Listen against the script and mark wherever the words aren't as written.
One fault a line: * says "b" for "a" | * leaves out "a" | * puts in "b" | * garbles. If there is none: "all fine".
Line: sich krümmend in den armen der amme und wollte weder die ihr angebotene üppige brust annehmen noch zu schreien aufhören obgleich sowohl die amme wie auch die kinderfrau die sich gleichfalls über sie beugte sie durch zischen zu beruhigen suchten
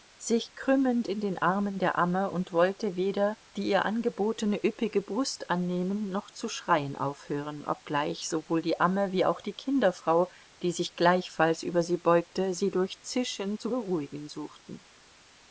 all fine